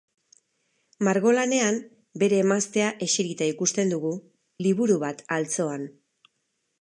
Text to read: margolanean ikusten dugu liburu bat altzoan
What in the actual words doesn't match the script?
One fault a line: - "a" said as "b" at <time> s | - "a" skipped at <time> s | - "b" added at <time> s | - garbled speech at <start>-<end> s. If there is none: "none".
- "bere emaztea eserita" added at 2.2 s